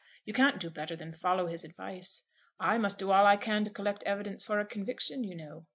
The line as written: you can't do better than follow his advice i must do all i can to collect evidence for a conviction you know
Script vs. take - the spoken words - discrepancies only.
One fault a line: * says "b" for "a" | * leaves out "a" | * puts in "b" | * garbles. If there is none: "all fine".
all fine